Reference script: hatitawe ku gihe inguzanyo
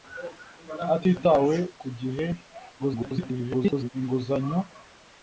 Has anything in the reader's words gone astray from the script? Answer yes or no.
yes